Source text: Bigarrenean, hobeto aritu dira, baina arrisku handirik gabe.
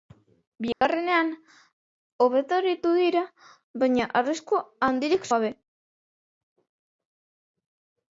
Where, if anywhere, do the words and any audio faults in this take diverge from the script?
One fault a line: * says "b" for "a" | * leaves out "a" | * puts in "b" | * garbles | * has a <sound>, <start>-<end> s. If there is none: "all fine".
* has a dropout, 0.7-0.8 s